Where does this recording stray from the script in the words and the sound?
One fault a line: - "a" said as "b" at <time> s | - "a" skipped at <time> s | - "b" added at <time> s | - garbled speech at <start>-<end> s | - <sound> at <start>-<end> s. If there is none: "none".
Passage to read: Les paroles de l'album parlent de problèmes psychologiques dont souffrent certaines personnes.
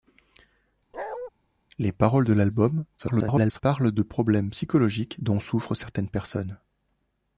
- bark at 0.9-1.3 s
- garbled speech at 3.0-3.6 s